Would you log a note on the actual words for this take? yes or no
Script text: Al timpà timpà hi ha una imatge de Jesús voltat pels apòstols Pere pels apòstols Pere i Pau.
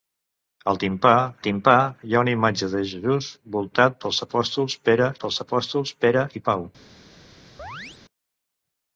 no